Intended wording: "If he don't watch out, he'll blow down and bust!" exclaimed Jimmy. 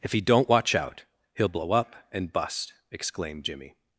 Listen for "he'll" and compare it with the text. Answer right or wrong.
right